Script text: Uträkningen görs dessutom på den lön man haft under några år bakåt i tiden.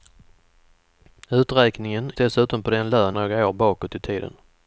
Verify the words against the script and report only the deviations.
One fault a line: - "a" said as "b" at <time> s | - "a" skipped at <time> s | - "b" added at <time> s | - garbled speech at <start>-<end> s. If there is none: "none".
- "görs" skipped at 2.1 s
- "man haft under" skipped at 3.2 s